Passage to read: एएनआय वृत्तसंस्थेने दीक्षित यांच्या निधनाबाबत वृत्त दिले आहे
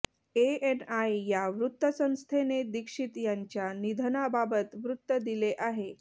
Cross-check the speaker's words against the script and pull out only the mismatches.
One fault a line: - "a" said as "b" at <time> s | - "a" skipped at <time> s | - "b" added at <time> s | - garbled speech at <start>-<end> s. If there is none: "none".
- "या" added at 1.3 s